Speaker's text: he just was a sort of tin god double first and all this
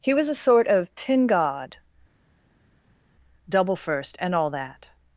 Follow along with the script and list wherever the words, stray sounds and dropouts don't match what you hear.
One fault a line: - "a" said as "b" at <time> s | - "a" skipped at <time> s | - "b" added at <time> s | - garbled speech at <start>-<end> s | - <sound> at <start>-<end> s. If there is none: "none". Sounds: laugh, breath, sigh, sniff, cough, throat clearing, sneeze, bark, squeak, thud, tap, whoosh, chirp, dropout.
- "just" skipped at 0.1 s
- "this" said as "that" at 4.5 s